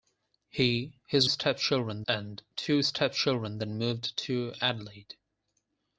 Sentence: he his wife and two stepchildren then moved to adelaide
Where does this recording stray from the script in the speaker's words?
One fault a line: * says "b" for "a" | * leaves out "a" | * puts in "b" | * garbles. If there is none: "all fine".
* says "stepchildren" for "wife"